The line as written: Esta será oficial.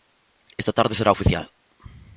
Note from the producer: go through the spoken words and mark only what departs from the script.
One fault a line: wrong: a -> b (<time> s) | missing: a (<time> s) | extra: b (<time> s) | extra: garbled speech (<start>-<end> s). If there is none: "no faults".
extra: tarde (0.7 s)